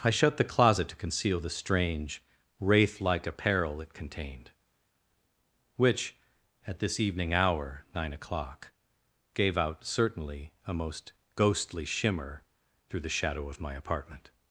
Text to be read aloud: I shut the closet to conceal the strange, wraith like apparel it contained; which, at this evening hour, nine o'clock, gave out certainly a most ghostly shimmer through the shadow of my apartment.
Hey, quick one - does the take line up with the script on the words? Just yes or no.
yes